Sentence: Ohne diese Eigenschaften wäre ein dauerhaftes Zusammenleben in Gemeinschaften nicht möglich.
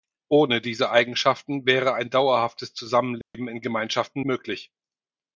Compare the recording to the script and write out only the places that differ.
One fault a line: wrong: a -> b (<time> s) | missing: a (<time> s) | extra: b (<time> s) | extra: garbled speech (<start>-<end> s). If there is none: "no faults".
missing: nicht (4.2 s)